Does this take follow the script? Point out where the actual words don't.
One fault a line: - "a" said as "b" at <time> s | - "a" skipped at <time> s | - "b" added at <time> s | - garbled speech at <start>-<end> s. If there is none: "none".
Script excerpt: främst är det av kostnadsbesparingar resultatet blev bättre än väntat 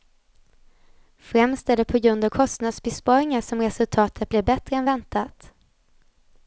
- "på grund" added at 1.9 s
- "som" added at 3.4 s